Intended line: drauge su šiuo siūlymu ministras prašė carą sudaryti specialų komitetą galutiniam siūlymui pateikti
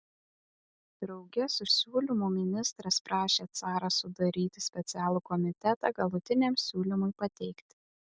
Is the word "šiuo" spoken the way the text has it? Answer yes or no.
no